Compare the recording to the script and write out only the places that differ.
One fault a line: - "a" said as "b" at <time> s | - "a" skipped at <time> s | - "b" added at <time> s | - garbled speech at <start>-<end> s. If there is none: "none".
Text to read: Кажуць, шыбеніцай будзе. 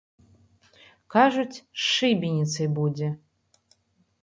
- "з" added at 1.6 s